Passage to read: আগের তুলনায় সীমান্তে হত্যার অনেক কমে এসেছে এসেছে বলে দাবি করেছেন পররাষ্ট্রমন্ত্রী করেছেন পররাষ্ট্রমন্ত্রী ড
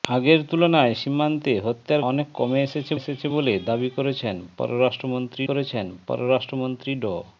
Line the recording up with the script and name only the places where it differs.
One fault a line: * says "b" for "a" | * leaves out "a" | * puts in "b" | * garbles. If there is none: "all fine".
all fine